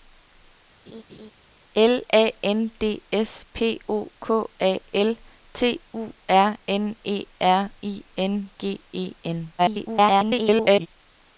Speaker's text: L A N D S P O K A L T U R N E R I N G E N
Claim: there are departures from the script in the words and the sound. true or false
true